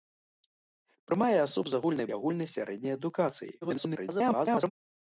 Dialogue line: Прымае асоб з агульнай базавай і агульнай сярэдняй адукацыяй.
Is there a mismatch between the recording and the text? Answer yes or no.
yes